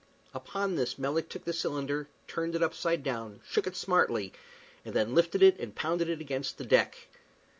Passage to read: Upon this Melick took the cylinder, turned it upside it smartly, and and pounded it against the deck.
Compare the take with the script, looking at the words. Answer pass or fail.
fail